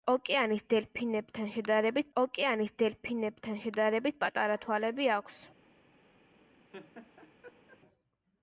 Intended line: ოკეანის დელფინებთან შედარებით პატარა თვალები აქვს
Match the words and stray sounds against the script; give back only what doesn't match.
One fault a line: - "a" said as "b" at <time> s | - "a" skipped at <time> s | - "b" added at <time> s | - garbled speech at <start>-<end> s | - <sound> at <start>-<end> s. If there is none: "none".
- "ოკეანის დელფინებთან შედარებით" added at 2.2 s
- laugh at 6.7-7.8 s